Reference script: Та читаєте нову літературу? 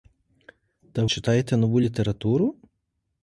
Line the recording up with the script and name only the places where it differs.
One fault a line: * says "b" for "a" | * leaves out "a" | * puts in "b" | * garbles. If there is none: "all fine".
all fine